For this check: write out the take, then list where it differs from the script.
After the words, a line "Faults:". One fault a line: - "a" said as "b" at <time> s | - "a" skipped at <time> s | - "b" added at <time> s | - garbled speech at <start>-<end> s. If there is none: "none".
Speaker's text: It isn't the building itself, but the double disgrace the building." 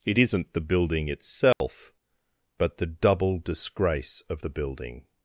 It isn't the building itself, but the double disgrace of the building."
Faults:
- "of" added at 4.3 s